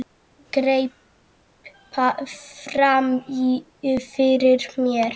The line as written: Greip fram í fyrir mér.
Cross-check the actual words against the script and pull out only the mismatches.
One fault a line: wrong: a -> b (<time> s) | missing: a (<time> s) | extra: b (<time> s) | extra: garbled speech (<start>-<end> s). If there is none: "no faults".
no faults